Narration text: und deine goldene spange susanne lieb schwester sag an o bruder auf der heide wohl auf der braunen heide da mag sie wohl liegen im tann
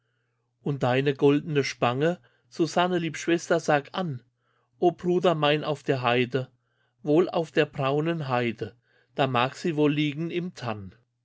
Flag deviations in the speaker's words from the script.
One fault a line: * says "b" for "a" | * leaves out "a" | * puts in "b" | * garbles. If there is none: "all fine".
* puts in "mein"